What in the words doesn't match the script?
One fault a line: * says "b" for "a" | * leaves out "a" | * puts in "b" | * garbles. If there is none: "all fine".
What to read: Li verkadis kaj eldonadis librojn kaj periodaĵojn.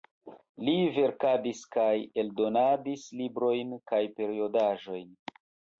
all fine